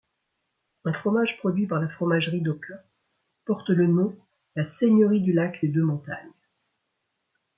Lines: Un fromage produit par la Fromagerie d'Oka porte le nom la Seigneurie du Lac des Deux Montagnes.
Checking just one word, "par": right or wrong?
right